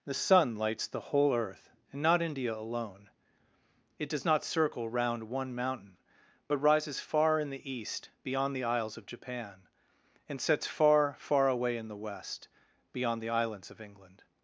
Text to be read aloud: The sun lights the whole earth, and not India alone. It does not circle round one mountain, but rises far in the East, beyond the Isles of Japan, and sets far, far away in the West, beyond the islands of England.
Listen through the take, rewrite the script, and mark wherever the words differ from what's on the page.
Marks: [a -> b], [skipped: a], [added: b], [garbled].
The sun lights the whole earth, and not India alone. It does not circle round one mountain, but rises far in the East, beyond the Isles of Japan, and sets far, far away in the West, beyond the islands of England.